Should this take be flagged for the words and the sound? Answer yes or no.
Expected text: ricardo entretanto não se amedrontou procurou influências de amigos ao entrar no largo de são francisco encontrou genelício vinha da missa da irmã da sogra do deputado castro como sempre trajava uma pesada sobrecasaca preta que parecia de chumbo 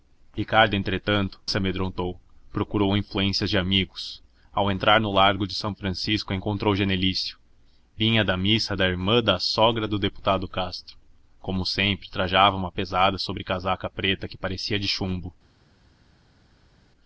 yes